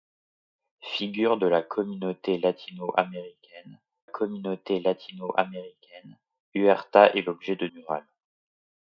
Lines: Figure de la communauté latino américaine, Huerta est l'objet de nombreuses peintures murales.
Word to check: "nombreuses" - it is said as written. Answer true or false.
false